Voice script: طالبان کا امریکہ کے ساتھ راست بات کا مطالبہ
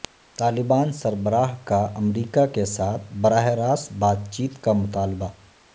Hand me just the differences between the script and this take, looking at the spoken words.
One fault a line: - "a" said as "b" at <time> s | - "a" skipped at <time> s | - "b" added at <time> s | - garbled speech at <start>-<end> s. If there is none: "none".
- "سربراہ" added at 0.9 s
- "براہ" added at 3.2 s
- "چیت" added at 4.3 s